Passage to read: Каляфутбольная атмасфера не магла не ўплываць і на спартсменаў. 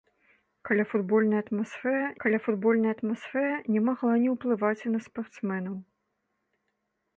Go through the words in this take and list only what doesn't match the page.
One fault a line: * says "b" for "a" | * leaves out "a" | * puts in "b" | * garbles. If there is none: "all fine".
* puts in "каляфутбольная атмасфера"